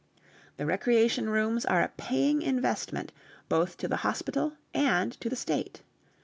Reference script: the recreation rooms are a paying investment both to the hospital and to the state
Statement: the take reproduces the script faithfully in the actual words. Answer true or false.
true